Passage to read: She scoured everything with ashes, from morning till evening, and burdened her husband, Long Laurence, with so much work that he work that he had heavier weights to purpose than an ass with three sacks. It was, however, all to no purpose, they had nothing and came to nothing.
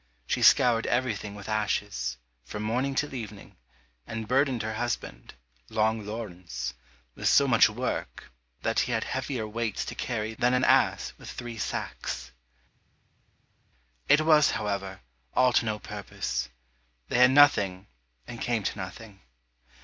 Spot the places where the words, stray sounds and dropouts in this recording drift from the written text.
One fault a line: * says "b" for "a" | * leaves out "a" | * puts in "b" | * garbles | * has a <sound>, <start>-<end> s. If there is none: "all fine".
* leaves out "work that he"
* says "carry" for "purpose"